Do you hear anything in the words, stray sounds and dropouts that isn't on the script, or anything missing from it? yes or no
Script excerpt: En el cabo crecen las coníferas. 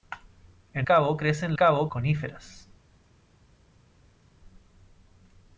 yes